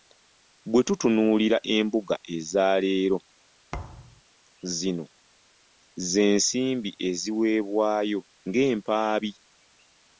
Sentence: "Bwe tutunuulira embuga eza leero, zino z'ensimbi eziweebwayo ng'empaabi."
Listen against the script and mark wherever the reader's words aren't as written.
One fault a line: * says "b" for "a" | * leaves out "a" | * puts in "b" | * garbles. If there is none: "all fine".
all fine